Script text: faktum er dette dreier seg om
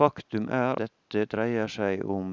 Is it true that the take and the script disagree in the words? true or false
false